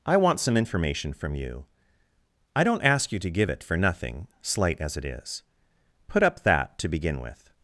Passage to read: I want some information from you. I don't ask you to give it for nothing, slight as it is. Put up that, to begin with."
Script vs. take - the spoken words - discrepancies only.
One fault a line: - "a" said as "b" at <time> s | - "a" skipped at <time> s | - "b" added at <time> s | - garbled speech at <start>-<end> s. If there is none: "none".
none